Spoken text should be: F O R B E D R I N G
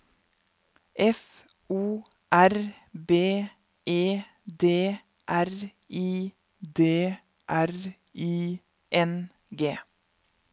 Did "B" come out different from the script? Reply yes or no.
no